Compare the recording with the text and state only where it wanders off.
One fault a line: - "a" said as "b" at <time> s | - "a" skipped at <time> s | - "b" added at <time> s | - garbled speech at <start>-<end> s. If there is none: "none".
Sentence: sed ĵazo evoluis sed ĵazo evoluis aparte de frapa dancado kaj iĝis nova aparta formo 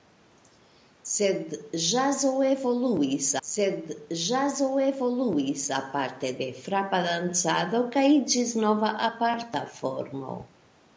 none